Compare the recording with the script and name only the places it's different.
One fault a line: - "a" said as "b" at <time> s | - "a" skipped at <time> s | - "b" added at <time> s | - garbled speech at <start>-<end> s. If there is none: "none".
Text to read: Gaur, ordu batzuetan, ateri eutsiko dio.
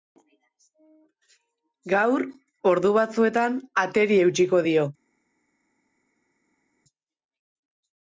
none